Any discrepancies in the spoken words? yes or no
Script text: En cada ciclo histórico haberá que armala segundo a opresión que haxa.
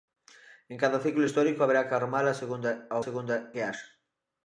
yes